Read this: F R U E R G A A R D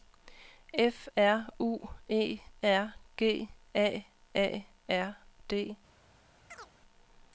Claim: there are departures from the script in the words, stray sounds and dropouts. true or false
true